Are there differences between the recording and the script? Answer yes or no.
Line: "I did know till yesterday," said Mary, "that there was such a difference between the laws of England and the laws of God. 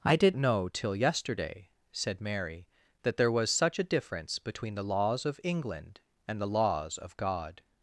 no